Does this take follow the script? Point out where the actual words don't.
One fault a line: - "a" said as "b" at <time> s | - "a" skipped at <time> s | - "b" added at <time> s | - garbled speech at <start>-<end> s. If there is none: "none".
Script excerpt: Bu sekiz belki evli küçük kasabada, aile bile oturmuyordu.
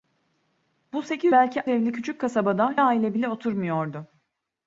none